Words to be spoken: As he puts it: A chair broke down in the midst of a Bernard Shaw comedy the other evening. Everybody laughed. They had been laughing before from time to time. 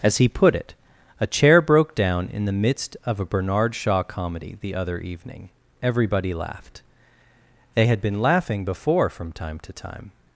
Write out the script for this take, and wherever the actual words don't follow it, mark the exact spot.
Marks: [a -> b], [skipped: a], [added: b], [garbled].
As he [puts -> put] it: A chair broke down in the midst of a Bernard Shaw comedy the other evening. Everybody laughed. They had been laughing before from time to time.